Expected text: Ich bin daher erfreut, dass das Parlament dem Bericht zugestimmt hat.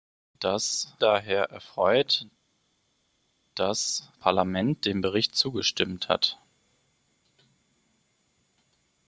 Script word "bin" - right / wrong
wrong